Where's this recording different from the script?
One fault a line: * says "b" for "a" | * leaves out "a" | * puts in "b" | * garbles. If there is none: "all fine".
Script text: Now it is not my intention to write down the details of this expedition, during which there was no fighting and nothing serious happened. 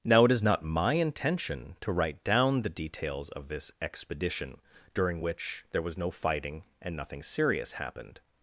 all fine